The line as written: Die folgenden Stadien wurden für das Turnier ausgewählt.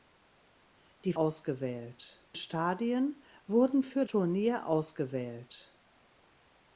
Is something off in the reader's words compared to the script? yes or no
yes